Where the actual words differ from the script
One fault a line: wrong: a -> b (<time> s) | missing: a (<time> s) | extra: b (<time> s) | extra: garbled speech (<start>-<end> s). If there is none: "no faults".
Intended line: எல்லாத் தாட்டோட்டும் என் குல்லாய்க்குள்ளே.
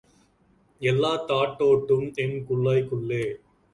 no faults